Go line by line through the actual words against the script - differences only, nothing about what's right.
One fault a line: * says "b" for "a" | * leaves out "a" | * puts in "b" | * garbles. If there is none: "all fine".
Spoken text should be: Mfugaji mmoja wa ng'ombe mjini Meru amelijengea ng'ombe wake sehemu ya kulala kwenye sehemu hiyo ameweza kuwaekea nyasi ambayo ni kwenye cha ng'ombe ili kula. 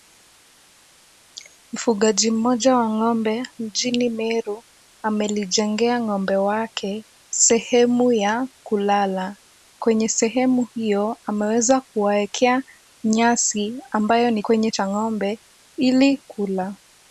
all fine